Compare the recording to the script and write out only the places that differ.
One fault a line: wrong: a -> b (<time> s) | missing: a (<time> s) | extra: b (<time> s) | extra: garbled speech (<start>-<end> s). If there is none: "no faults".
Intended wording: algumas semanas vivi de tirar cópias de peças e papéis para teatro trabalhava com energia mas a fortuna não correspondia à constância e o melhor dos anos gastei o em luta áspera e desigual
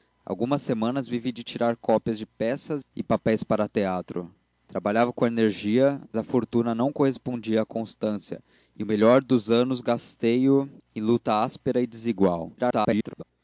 missing: mas (6.0 s)
extra: garbled speech (12.6-13.2 s)